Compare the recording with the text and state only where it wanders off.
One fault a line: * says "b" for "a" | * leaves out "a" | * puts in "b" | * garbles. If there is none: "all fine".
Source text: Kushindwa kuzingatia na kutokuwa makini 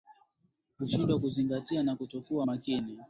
all fine